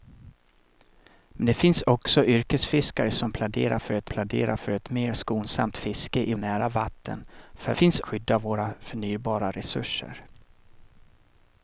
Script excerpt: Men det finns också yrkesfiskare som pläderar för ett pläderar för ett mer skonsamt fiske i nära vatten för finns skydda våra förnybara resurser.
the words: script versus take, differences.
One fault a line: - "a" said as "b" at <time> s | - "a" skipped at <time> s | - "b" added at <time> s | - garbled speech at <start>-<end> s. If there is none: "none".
none